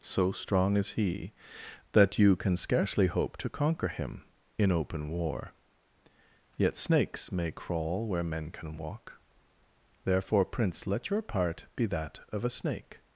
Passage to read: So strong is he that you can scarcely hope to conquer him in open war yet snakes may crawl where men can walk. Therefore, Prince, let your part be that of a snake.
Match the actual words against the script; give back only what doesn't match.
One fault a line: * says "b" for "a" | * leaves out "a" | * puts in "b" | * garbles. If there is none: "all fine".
all fine